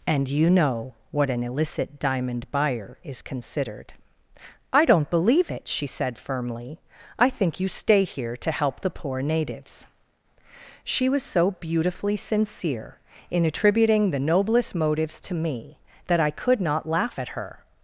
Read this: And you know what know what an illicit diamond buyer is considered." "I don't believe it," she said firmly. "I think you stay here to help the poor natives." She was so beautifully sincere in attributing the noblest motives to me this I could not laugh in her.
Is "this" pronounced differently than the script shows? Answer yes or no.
yes